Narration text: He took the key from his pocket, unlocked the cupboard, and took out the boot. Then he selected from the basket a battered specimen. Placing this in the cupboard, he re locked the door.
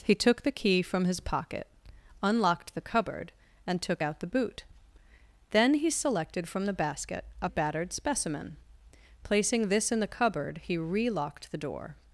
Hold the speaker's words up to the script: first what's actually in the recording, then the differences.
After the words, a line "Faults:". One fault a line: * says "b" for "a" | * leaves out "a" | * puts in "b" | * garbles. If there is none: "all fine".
He took the key from his pocket, unlocked the cupboard, and took out the boot. Then he selected from the basket a battered specimen. Placing this in the cupboard, he re locked the door.
Faults:
all fine